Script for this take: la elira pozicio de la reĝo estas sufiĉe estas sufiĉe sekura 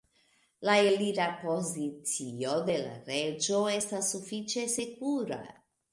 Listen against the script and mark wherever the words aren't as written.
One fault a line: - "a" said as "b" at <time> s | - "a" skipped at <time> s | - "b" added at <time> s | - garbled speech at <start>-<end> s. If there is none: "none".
- "estas sufiĉe" skipped at 4.7 s